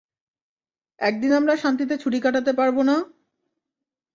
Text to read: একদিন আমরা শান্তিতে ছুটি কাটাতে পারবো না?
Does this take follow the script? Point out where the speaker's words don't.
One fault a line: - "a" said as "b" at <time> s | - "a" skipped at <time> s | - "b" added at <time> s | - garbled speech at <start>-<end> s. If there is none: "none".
none